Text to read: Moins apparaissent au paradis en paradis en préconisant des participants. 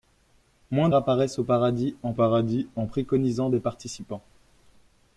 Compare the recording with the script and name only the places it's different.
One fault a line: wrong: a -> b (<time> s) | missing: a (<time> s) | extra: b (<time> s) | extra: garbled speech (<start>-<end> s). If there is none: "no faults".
no faults